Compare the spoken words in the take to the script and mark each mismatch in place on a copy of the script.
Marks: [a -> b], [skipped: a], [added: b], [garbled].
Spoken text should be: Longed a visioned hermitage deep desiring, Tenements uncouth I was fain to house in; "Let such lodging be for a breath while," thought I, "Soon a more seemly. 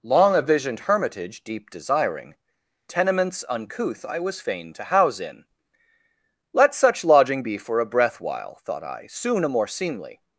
[Longed -> Long] a visioned hermitage deep desiring, Tenements uncouth I was fain to house in; "Let such lodging be for a breath while," thought I, "Soon a more seemly.